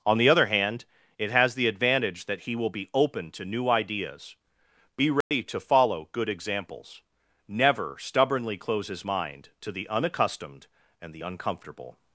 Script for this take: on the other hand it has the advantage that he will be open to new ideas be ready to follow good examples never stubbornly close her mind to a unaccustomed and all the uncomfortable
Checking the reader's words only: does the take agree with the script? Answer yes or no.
no